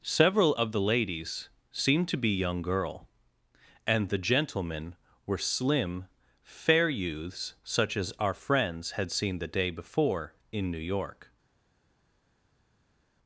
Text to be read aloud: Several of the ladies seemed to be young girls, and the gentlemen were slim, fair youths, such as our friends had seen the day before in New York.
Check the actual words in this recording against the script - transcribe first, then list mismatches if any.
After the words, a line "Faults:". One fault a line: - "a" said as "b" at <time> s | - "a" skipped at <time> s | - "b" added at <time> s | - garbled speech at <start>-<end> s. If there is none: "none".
Several of the ladies seemed to be young girl, and the gentlemen were slim, fair youths, such as our friends had seen the day before in New York.
Faults:
- "girls" said as "girl" at 2.6 s